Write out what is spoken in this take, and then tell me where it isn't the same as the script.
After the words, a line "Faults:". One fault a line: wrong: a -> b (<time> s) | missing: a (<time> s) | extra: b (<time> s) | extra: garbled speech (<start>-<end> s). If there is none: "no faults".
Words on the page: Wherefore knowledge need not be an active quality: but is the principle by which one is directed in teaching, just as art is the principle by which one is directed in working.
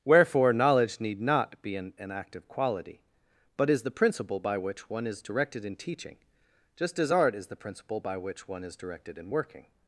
Wherefore knowledge need not be an an active quality: but is the principle by which one is directed in teaching, just as art is the principle by which one is directed in working.
Faults:
extra: an (2.0 s)